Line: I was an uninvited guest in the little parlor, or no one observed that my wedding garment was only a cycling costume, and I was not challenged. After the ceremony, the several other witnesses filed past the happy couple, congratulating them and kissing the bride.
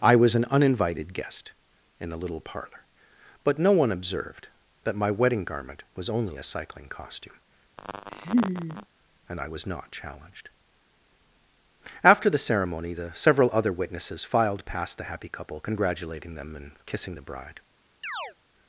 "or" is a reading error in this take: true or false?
true